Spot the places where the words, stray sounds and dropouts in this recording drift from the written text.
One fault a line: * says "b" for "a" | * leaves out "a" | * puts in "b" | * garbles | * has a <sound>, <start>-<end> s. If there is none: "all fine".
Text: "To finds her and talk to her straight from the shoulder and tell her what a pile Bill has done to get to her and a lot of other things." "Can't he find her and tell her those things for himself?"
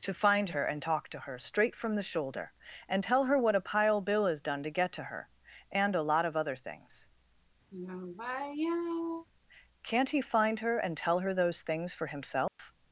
* says "find" for "finds"
* has a sigh, 7.7-9.3 s
* has a dropout, 12.5-12.6 s